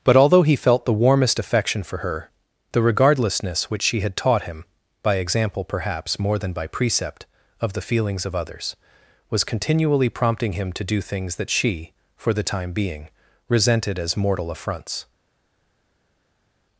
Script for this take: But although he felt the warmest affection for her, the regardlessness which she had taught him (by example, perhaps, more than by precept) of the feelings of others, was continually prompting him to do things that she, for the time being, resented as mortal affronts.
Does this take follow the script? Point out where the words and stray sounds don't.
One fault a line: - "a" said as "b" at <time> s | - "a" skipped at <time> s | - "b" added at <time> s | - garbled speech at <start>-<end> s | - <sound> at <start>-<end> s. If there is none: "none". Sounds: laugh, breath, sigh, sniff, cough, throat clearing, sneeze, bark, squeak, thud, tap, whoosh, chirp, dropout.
none